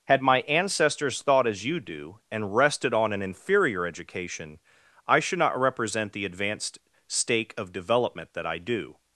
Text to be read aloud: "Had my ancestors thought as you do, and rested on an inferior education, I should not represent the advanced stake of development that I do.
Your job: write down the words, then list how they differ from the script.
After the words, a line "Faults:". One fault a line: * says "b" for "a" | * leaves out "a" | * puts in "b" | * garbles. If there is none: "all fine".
"Had my ancestors thought as you do, and rested on an inferior education, I should not represent the advanced stake of development that I do.
Faults:
all fine